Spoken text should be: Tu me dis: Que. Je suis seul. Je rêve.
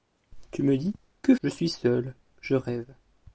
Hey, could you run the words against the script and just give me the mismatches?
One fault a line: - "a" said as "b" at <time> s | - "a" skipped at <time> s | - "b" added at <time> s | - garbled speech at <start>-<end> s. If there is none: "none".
none